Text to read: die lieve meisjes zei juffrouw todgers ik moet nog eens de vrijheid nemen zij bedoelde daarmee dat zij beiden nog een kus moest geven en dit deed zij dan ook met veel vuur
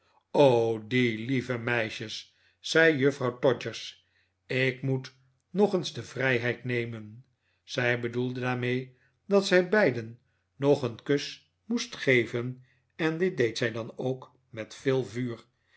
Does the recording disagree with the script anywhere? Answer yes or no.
no